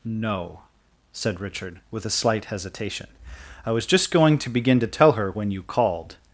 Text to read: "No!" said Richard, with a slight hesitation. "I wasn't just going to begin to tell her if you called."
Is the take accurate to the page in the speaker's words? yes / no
no